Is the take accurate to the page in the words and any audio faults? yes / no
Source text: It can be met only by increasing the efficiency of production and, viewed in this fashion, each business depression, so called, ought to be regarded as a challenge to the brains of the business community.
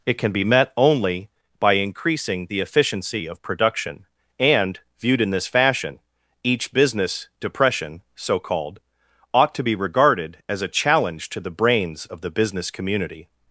yes